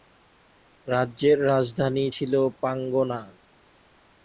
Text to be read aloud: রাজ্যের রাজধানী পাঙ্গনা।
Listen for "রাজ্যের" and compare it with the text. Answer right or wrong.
right